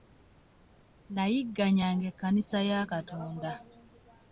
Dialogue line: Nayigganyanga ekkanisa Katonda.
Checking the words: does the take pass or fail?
fail